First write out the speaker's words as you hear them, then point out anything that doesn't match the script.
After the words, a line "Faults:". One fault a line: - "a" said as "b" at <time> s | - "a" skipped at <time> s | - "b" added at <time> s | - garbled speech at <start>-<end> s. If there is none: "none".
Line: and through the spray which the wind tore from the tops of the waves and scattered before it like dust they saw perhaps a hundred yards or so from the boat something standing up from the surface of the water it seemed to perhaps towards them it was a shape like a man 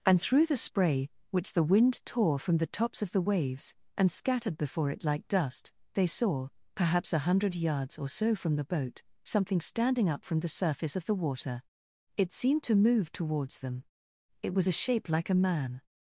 and through the spray which the wind tore from the tops of the waves and scattered before it like dust they saw perhaps a hundred yards or so from the boat something standing up from the surface of the water it seemed to move towards them it was a shape like a man
Faults:
- "perhaps" said as "move" at 12.8 s